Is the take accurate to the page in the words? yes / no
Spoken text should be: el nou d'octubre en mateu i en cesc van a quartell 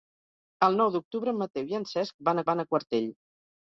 no